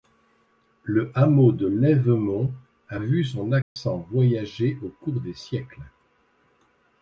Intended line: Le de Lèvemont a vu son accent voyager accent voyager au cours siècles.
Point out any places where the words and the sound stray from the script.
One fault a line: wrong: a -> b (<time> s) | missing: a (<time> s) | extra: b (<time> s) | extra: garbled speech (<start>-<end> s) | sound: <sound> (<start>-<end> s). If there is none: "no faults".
extra: hameau (1.1 s)
sound: dropout (3.6-3.8 s)
missing: accent voyager (4.8 s)
extra: des (5.2 s)